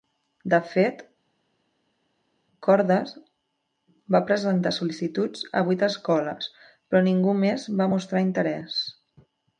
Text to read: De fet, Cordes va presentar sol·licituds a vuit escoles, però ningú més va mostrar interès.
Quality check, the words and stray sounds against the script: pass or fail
pass